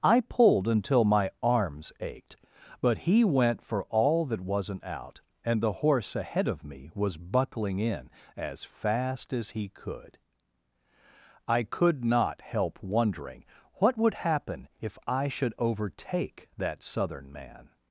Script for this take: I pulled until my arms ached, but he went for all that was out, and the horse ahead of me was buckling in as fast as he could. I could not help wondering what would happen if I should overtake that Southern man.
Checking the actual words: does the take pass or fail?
fail